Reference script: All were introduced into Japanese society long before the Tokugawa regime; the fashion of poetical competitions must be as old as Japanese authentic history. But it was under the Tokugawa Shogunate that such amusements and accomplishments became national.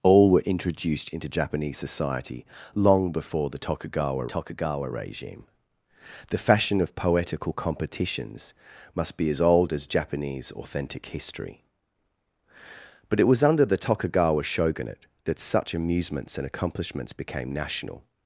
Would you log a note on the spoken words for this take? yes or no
yes